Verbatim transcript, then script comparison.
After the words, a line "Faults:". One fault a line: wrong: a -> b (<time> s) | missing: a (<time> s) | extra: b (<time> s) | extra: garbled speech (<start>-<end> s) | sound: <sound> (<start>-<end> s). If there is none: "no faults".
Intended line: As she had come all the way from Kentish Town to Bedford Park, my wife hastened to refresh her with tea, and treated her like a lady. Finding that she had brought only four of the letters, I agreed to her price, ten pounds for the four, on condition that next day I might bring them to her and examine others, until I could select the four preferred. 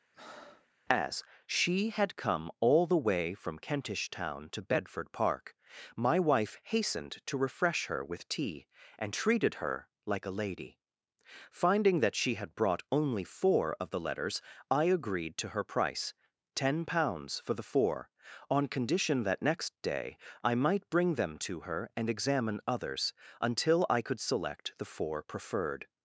As she had come all the way from Kentish Town to Bedford Park, my wife hastened to refresh her with tea, and treated her like a lady. Finding that she had brought only four of the letters, I agreed to her price, ten pounds for the four, on condition that next day I might bring them to her and examine others, until I could select the four preferred.
Faults:
sound: breath (0.1-0.7 s)